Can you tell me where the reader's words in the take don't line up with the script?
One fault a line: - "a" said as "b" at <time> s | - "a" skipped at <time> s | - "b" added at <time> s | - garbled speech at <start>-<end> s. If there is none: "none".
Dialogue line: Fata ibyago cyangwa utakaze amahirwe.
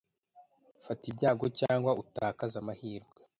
none